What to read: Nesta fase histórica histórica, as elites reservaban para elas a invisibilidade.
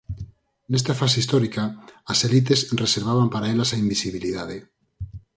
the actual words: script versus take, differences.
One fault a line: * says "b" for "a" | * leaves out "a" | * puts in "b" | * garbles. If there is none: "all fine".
* leaves out "histórica"